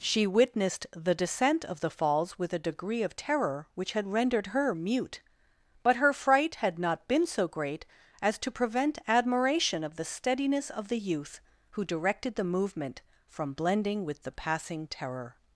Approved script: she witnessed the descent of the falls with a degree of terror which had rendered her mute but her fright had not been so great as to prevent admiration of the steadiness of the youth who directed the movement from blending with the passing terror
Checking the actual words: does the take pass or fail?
pass